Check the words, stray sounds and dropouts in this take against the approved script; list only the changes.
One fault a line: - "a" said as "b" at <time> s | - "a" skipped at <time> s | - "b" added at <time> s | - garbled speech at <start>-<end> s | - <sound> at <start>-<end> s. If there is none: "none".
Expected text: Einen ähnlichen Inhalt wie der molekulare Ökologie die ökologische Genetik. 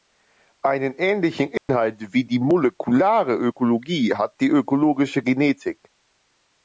- dropout at 1.6-1.7 s
- "der" said as "die" at 2.2 s
- "hat" added at 4.1 s